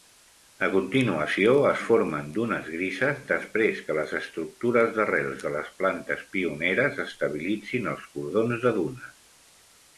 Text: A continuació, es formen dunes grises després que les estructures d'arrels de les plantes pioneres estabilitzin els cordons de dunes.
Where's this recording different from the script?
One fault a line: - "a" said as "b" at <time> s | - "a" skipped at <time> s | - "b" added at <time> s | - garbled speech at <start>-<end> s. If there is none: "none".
none